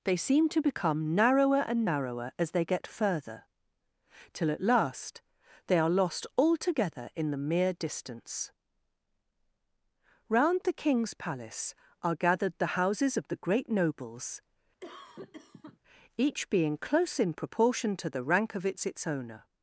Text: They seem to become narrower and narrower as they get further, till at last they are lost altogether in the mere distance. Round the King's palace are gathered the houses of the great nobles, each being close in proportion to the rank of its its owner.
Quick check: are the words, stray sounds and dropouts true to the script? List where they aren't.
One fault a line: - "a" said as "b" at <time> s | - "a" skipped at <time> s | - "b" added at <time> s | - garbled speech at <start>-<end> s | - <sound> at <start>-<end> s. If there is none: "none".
- cough at 14.8-15.8 s